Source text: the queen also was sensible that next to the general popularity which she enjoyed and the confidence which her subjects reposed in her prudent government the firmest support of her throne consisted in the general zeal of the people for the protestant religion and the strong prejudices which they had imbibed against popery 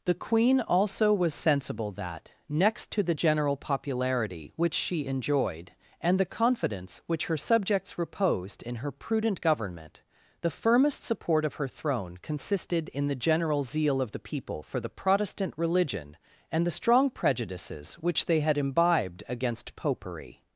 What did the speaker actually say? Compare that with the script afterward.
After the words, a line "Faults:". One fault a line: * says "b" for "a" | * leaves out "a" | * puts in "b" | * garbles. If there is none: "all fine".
the queen also was sensible that next to the general popularity which she enjoyed and the confidence which her subjects reposed in her prudent government the firmest support of her throne consisted in the general zeal of the people for the protestant religion and the strong prejudices which they had imbibed against popery
Faults:
all fine